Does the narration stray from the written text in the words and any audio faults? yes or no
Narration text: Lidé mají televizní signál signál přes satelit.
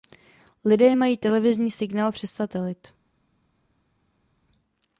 yes